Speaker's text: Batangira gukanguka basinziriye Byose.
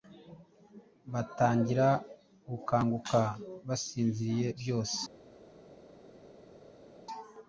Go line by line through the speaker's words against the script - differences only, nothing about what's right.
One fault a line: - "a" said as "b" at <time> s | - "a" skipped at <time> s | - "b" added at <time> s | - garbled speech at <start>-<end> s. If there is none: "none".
none